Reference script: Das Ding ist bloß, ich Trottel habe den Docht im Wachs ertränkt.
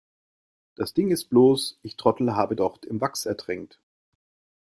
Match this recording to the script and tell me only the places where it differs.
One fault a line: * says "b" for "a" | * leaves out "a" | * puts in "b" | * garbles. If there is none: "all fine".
* leaves out "den"